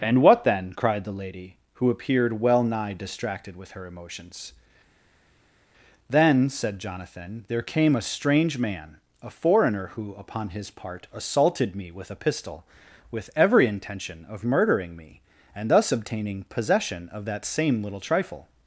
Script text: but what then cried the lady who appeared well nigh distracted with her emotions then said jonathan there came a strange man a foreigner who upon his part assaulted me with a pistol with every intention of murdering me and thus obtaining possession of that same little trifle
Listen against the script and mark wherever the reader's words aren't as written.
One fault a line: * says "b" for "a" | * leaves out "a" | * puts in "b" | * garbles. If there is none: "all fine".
* says "and" for "but"